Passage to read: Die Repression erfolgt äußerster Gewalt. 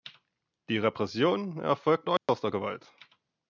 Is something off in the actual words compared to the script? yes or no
no